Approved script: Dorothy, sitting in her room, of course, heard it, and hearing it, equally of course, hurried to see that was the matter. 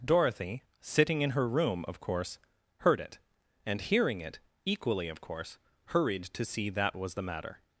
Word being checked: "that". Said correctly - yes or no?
yes